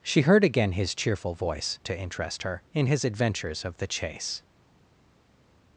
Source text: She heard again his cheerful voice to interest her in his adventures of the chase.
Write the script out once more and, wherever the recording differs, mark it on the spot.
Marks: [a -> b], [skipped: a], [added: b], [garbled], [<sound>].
She heard again his cheerful voice to interest her in his adventures of the chase.